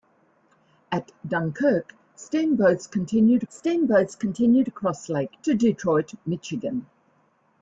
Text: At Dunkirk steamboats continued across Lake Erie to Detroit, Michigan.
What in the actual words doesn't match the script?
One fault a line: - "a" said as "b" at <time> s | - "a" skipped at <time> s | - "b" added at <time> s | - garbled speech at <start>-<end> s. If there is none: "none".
- "steamboats continued" added at 3.5 s
- "Erie" skipped at 5.4 s